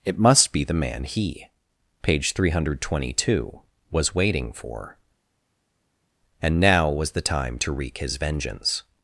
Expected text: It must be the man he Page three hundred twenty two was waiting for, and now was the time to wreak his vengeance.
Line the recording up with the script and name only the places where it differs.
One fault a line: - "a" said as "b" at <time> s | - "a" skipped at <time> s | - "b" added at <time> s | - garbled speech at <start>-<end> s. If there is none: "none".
none